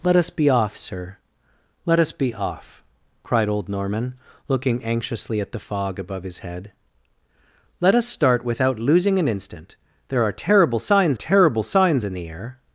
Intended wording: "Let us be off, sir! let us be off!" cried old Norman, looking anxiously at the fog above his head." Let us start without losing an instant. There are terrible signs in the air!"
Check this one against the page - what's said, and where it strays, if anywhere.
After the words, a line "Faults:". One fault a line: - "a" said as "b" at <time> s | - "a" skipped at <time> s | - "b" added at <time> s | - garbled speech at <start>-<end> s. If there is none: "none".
"Let us be off, sir! let us be off!" cried old Norman, looking anxiously at the fog above his head." Let us start without losing an instant. There are terrible signs terrible signs in the air!"
Faults:
- "terrible signs" added at 11.1 s